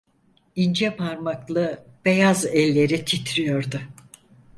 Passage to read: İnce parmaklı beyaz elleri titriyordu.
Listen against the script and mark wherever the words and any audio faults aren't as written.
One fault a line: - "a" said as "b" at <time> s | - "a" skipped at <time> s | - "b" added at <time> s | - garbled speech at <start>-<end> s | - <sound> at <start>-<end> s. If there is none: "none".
none